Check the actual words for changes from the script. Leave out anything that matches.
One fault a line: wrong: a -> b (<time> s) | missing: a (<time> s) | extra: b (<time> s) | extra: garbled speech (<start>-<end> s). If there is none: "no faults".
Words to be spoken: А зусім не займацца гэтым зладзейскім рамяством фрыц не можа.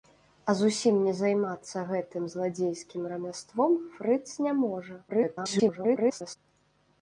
extra: garbled speech (5.1-6.4 s)